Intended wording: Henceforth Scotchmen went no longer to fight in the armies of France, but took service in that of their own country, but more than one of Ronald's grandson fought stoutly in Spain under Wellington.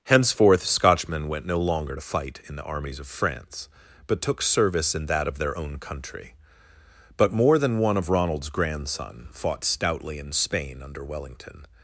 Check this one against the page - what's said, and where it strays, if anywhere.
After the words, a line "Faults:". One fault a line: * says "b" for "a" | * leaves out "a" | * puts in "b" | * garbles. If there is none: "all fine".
Henceforth Scotchmen went no longer to fight in the armies of France, but took service in that of their own country, but more than one of Ronald's grandson fought stoutly in Spain under Wellington.
Faults:
all fine